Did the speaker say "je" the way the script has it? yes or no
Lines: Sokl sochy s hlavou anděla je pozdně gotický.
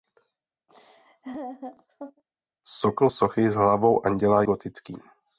no